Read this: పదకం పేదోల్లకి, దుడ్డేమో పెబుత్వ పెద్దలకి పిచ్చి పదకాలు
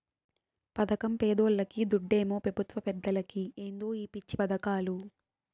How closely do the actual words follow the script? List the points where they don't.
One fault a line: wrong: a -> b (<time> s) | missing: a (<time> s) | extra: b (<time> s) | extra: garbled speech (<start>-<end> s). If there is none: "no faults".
extra: ఏందో ఈ (3.6 s)